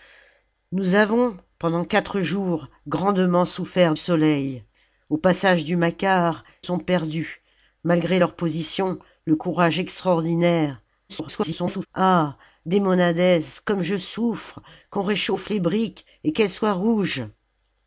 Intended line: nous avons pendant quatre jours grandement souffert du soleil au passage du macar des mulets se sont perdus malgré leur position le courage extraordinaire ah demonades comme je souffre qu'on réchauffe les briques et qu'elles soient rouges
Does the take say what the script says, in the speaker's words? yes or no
no